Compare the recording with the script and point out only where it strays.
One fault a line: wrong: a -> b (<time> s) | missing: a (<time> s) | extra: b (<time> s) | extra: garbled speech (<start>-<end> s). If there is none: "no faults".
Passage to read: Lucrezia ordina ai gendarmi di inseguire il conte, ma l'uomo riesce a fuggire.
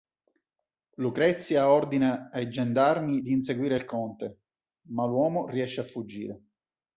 no faults